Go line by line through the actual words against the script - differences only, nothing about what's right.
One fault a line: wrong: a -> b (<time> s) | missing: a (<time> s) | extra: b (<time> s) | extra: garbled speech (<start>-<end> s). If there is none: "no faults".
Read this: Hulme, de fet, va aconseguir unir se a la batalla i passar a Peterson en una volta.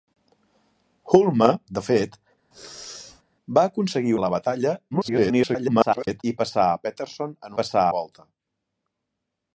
missing: unir se (4.1 s)
extra: garbled speech (4.9-6.2 s)
wrong: una -> passar (7.6 s)